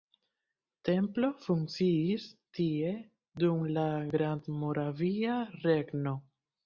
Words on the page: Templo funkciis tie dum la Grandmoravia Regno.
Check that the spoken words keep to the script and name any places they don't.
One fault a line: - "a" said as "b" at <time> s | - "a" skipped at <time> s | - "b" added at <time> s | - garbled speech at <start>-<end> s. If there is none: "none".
none